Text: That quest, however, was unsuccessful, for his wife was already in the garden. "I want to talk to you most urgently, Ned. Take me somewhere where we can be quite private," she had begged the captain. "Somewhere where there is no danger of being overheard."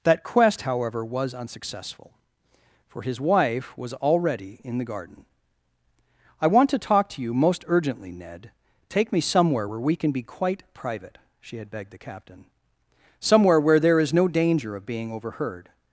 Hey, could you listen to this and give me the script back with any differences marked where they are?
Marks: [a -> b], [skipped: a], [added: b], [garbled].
That quest, however, was unsuccessful, for his wife was already in the garden. "I want to talk to you most urgently, Ned. Take me somewhere where we can be quite private," she had begged the captain. "Somewhere where there is no danger of being overheard."